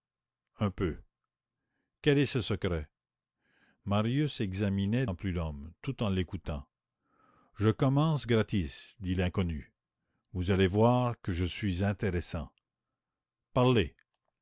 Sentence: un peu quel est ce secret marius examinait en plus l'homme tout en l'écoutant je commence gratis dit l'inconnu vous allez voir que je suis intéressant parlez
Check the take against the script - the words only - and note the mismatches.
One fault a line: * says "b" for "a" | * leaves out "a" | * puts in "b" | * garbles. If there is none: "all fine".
all fine